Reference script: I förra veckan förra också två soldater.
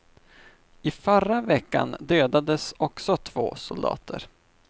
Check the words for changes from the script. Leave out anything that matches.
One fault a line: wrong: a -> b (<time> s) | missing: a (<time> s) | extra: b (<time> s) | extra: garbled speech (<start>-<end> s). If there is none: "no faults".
wrong: förra -> dödades (2.0 s)